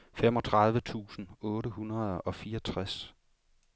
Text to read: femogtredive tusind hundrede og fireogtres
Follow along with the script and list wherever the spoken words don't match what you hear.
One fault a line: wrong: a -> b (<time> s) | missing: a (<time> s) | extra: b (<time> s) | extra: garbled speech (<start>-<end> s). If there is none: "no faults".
extra: otte (1.4 s)